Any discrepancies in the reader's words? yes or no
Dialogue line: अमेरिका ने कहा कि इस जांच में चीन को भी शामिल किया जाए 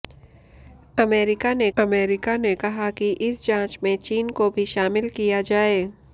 yes